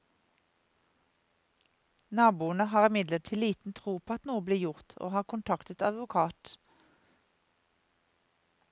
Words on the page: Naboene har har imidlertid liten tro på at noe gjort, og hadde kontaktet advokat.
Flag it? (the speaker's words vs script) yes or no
yes